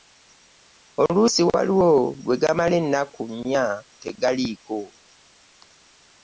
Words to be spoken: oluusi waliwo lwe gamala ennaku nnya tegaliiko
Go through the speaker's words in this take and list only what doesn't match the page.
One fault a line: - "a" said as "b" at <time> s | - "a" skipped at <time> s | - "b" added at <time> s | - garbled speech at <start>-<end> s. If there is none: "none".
none